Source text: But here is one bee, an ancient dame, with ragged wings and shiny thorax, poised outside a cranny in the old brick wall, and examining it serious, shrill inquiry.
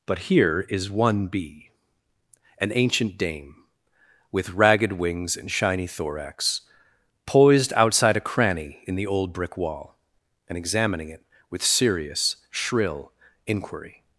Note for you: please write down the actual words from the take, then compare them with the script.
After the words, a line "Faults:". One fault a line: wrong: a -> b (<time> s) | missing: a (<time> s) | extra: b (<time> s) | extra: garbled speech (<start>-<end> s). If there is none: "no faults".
But here is one bee, an ancient dame, with ragged wings and shiny thorax, poised outside a cranny in the old brick wall, and examining it with serious, shrill inquiry.
Faults:
extra: with (11.5 s)